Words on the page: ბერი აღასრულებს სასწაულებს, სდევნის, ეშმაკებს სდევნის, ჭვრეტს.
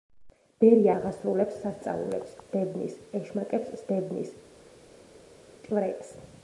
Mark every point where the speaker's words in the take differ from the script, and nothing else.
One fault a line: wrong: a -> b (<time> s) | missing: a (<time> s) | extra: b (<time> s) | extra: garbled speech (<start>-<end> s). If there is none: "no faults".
no faults